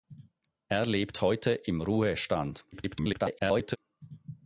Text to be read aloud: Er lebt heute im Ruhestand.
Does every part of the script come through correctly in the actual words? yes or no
no